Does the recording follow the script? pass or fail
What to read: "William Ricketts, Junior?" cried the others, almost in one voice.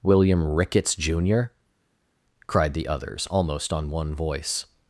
fail